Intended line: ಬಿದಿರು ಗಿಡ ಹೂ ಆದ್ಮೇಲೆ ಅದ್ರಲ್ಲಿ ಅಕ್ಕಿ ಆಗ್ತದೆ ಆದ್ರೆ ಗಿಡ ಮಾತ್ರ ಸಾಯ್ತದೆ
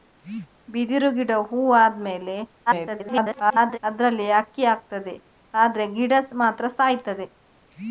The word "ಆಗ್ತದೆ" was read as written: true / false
true